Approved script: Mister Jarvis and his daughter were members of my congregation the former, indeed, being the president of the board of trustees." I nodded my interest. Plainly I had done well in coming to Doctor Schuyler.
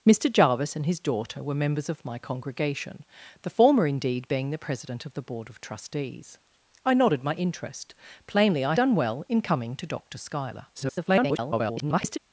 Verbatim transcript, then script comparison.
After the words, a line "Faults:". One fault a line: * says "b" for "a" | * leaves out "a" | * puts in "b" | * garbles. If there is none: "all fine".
Mister Jarvis and his daughter were members of my congregation the former, indeed, being the president of the board of trustees." I nodded my interest. Plainly I done well in coming to Doctor Schuyler. [garbled]
Faults:
* leaves out "had"
* garbles